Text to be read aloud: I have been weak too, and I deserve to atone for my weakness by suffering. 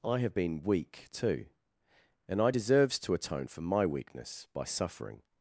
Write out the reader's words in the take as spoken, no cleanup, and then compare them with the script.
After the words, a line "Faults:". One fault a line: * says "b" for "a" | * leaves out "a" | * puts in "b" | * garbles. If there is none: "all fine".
I have been weak too, and I deserves to atone for my weakness by suffering.
Faults:
* says "deserves" for "deserve"